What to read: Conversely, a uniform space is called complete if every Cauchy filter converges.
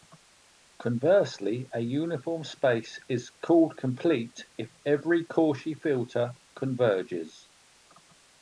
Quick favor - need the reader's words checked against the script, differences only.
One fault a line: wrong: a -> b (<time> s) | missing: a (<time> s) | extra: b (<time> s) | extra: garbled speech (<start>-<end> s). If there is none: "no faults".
no faults